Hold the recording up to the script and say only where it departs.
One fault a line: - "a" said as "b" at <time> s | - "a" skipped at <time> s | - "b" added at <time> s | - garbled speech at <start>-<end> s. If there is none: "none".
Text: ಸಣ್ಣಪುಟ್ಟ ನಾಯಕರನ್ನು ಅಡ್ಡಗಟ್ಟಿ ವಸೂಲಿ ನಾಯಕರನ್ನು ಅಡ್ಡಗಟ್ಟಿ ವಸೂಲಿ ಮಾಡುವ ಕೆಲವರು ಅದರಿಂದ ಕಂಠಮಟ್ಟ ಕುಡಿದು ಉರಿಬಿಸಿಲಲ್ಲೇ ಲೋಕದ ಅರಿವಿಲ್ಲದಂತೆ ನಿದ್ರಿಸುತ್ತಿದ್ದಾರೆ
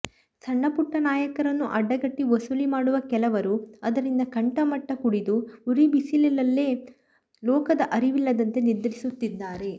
- "ನಾಯಕರನ್ನು ಅಡ್ಡಗಟ್ಟಿ ವಸೂಲಿ" skipped at 2.6 s